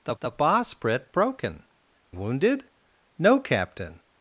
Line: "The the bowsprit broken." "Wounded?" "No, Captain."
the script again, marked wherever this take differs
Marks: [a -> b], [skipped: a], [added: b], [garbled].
"The the bowsprit broken." "Wounded?" "No, Captain."